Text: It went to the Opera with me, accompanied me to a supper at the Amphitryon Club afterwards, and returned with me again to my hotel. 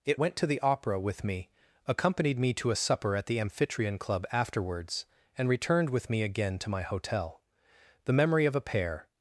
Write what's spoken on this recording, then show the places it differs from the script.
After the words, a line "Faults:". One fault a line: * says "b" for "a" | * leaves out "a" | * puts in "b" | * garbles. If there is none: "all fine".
It went to the Opera with me, accompanied me to a supper at the Amphitryon Club afterwards, and returned with me again to my hotel. The memory of a pair
Faults:
* puts in "The memory of a pair"